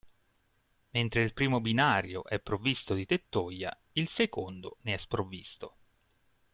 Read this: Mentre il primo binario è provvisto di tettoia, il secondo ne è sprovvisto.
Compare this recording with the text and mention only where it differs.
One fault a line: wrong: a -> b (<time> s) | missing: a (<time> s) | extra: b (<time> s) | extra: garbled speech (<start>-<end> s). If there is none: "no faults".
no faults